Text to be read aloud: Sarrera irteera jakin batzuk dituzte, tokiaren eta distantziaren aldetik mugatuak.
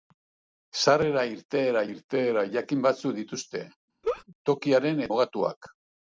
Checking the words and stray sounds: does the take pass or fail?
fail